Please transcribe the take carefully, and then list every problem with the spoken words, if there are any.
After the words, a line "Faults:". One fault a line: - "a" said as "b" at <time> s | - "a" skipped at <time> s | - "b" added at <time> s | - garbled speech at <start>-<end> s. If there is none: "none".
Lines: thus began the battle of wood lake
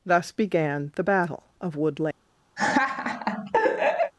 thus began the battle of wood lake
Faults:
none